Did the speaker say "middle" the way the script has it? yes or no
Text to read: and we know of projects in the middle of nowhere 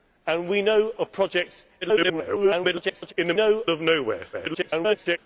no